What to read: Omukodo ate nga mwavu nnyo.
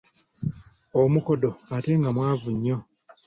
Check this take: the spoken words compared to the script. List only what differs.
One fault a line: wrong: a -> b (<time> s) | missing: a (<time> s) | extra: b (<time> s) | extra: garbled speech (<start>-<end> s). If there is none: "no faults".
no faults